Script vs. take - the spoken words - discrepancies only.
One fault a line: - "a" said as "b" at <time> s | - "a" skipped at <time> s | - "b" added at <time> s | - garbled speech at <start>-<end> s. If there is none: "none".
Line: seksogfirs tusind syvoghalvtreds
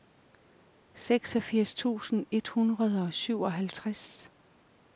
- "et hundrede og" added at 2.3 s